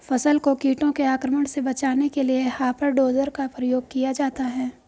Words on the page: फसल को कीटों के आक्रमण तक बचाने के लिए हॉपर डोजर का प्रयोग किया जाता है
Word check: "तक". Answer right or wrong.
wrong